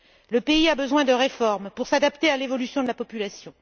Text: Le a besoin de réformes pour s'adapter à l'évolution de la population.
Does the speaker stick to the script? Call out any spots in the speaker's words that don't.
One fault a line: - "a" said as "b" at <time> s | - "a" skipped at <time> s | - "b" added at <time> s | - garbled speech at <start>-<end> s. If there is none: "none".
- "pays" added at 0.4 s